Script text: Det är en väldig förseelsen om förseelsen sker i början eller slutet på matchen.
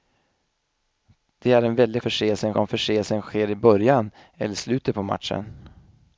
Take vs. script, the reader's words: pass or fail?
pass